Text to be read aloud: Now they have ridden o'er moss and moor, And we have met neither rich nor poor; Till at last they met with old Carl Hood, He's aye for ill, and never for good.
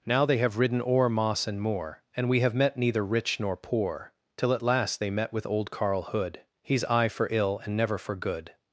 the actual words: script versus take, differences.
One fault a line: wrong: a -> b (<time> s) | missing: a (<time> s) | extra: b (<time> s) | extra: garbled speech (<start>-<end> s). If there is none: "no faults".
no faults